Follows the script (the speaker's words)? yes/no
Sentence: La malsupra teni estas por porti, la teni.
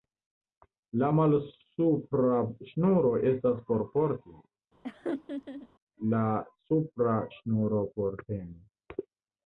no